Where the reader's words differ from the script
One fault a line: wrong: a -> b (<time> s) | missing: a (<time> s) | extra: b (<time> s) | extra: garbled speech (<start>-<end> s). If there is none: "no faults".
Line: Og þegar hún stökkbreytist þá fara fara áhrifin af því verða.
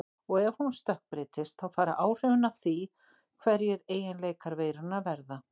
wrong: þegar -> ef (0.4 s)
missing: fara (2.0 s)
extra: hverjir eiginleikar veirunnar (3.4 s)